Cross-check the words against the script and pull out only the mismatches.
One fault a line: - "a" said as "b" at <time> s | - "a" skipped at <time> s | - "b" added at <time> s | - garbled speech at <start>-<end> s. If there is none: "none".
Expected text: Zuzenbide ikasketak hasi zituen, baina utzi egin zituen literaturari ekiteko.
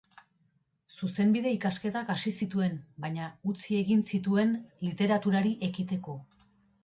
none